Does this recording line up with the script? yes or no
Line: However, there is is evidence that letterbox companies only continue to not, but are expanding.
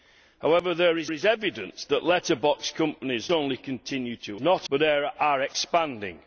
yes